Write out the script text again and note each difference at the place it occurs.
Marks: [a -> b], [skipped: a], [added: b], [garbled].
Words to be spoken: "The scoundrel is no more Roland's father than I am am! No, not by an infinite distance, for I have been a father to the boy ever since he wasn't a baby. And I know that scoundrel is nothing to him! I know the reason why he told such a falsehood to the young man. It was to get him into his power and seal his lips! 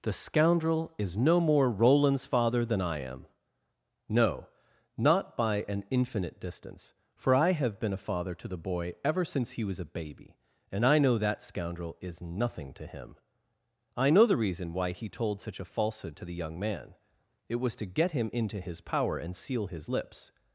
"The scoundrel is no more Roland's father than I am [skipped: am!] No, not by an infinite distance, for I have been a father to the boy ever since he [wasn't -> was] a baby. And I know that scoundrel is nothing to him! I know the reason why he told such a falsehood to the young man. It was to get him into his power and seal his lips!